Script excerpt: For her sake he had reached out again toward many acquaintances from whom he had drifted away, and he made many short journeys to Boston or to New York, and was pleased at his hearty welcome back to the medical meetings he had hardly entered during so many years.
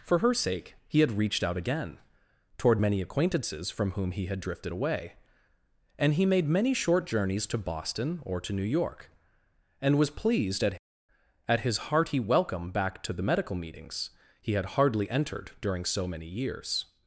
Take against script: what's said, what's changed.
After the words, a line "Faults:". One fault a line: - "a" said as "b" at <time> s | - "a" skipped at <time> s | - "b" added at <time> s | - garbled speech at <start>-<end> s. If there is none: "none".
For her sake he had reached out again toward many acquaintances from whom he had drifted away, and he made many short journeys to Boston or to New York, and was pleased at at his hearty welcome back to the medical meetings he had hardly entered during so many years.
Faults:
- "at" added at 11.5 s